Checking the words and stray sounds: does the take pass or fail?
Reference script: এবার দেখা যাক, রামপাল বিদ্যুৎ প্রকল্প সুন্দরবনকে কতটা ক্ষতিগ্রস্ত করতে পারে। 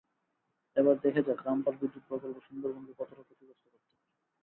pass